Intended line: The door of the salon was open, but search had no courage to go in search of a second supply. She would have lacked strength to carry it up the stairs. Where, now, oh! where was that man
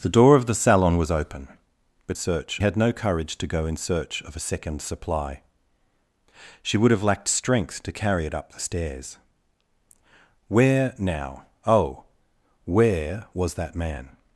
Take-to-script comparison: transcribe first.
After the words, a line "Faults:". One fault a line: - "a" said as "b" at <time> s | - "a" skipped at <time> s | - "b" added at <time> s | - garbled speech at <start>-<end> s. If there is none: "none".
The door of the salon was open, but search had no courage to go in search of a second supply. She would have lacked strength to carry it up the stairs. Where, now, oh! where was that man
Faults:
none